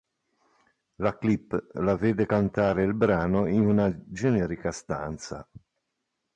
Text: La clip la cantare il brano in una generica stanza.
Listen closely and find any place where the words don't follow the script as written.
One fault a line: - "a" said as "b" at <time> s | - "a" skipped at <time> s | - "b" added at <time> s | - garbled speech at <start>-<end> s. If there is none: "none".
- "vede" added at 1.9 s